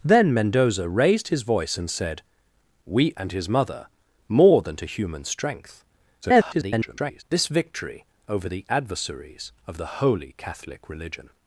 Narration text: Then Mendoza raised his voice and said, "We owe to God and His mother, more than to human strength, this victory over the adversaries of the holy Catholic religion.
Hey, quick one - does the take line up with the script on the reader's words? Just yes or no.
no